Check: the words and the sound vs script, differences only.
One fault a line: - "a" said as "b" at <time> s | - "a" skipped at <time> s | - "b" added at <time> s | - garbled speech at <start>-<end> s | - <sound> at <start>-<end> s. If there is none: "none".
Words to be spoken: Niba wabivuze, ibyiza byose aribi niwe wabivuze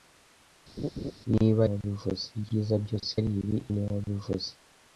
- laugh at 0.8-1.1 s